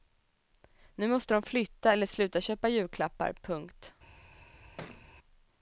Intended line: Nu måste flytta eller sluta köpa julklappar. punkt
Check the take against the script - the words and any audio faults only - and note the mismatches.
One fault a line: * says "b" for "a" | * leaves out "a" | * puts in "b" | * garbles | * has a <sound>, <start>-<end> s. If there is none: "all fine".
* puts in "de"
* has a thud, 4.8-5.1 s